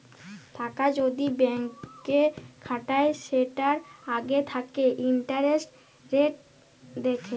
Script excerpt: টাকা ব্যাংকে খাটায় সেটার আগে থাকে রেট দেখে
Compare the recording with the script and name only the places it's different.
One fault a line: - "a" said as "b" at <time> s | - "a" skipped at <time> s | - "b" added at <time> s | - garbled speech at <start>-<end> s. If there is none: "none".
- "যদি" added at 1.0 s
- "ইন্টারেস্ট" added at 5.1 s